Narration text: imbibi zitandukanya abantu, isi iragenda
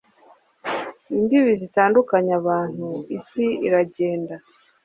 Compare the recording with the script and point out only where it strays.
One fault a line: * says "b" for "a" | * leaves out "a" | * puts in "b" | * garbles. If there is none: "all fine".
all fine